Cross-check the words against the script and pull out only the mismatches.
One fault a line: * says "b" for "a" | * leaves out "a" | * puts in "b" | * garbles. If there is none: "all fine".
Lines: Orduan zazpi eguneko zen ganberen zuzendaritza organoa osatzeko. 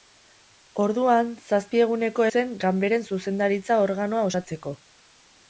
all fine